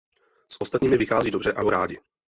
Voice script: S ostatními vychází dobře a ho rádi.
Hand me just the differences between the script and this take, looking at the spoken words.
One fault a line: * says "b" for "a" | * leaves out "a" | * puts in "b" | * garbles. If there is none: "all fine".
all fine